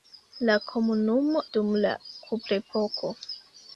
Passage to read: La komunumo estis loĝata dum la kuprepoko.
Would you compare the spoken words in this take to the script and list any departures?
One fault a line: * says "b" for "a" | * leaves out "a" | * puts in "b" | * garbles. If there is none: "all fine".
* leaves out "estis loĝata"